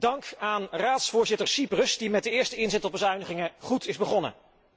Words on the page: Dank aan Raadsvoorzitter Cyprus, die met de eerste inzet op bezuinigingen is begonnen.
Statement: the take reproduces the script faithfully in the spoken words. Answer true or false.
false